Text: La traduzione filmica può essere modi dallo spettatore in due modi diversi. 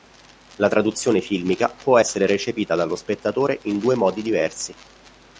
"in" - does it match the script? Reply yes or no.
yes